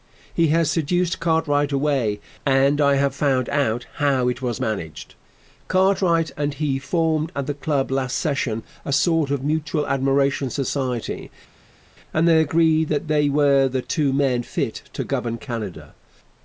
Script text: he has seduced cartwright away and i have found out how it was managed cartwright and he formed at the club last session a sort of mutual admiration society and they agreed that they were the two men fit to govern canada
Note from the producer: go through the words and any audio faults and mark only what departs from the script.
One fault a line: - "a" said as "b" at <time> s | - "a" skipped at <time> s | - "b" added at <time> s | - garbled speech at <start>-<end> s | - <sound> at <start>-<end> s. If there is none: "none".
none